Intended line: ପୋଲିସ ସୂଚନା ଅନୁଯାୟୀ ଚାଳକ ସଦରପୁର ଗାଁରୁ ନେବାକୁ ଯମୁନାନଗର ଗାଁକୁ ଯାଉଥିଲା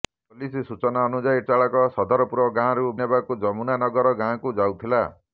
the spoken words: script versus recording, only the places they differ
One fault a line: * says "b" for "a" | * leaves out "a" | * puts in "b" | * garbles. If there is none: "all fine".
all fine